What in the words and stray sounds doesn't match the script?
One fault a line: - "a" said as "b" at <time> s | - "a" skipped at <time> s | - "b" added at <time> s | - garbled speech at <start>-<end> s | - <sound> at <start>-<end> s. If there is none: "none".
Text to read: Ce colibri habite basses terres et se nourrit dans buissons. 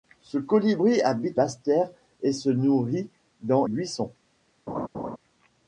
- laugh at 4.7-5.2 s